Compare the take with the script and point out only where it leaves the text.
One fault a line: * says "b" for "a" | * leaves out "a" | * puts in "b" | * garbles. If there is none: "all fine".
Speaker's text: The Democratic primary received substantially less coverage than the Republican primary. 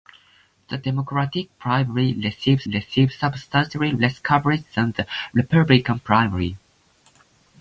* puts in "received"